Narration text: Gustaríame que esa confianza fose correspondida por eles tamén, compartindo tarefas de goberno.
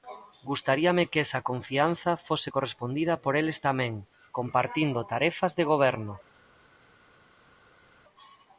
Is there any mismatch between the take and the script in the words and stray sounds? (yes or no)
no